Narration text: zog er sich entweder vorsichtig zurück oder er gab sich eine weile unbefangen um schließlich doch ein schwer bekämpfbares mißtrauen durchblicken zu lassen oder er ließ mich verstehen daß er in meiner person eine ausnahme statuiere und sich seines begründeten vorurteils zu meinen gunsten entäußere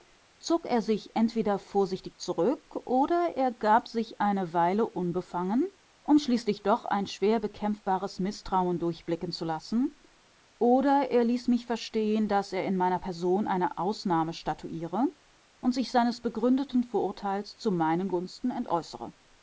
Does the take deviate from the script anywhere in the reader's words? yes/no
no